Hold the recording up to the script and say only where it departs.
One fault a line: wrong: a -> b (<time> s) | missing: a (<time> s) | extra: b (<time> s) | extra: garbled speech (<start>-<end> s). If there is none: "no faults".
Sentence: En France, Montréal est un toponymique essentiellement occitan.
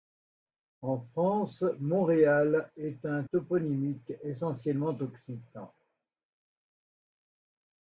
no faults